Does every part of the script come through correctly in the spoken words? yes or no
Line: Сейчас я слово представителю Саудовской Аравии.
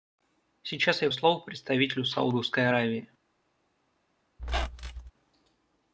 yes